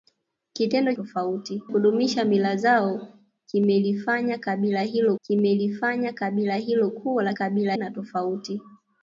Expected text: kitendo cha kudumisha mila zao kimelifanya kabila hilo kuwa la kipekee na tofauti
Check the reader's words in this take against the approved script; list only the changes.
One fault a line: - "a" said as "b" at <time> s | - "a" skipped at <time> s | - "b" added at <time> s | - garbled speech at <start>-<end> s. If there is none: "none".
- "cha" said as "tofauti" at 0.9 s
- "kimelifanya kabila hilo" added at 5.2 s
- "kipekee" said as "kabila" at 7.3 s